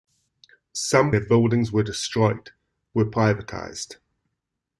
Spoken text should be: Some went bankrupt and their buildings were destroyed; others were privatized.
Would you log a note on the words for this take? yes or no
yes